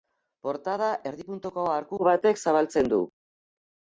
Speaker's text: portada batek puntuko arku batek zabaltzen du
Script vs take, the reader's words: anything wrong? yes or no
yes